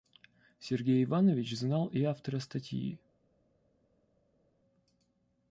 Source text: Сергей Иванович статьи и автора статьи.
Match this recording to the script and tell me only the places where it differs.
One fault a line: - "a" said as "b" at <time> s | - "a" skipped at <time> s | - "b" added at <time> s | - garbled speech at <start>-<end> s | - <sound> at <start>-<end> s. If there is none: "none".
- "статьи" said as "знал" at 1.6 s